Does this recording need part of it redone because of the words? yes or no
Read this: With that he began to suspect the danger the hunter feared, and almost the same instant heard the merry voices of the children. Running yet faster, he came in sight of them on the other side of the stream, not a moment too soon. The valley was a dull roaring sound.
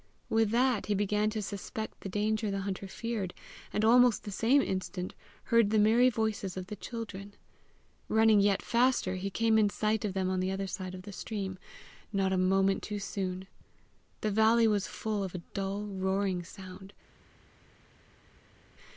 yes